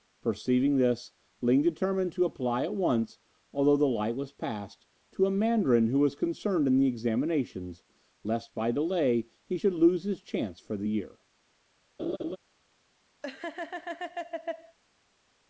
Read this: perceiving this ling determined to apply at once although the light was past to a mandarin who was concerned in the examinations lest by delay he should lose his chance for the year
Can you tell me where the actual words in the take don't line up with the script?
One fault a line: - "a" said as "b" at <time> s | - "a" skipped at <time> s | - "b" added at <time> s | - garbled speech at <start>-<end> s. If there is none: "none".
none